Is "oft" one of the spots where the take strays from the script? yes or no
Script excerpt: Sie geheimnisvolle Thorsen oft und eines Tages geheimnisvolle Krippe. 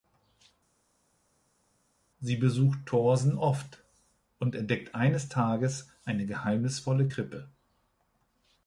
no